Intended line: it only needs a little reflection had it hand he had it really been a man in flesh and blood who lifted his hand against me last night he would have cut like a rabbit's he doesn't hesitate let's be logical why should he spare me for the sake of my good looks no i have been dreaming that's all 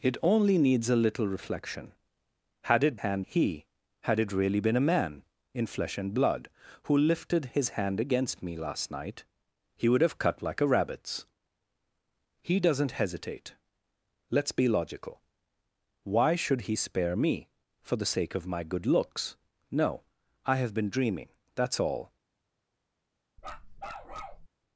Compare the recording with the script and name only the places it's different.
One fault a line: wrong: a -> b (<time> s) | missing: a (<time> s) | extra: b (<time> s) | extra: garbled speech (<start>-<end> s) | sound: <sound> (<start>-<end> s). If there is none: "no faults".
sound: bark (23.4-24.5 s)